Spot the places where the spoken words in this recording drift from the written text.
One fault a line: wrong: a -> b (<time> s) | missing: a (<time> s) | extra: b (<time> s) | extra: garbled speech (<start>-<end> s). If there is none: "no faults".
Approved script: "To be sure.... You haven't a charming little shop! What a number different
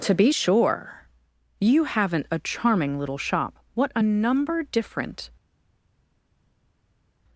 no faults